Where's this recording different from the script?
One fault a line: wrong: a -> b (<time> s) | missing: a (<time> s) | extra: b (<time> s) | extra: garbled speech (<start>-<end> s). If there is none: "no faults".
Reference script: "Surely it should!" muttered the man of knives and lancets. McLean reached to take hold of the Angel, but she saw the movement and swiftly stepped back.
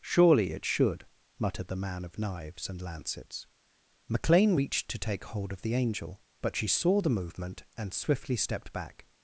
no faults